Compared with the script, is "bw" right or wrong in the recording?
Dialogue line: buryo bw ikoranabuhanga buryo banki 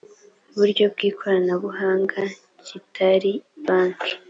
right